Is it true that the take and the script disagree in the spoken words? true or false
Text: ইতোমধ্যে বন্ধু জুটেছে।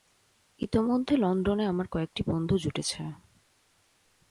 true